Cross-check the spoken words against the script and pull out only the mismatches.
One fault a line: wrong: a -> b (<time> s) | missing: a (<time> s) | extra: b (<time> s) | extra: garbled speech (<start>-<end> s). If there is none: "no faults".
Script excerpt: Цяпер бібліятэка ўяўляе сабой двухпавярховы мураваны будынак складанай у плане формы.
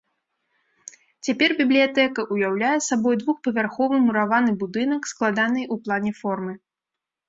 no faults